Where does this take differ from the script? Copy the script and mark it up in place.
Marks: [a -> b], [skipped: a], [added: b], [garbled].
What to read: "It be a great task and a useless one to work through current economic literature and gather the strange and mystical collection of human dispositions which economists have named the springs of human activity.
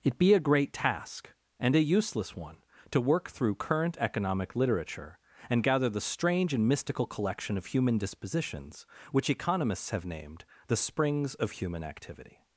"It be a great task and a useless one to work through current economic literature and gather the strange and mystical collection of human dispositions which economists have named the springs of human activity.